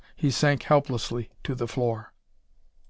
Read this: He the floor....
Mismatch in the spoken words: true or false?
true